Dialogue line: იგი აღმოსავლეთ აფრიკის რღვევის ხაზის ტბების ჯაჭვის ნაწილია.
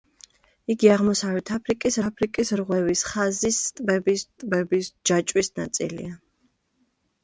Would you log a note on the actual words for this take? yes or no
yes